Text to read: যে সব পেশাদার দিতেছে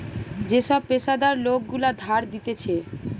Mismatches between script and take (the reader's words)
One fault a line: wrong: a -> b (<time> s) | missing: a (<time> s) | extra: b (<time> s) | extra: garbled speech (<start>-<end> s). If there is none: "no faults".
extra: লোক গুলা ধার (1.4 s)